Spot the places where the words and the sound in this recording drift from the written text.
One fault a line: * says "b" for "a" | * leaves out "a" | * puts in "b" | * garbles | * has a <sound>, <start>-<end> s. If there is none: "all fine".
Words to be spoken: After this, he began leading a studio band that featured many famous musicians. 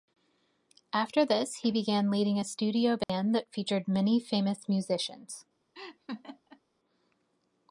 * has a dropout, 3.0-3.1 s
* has a laugh, 5.7-6.6 s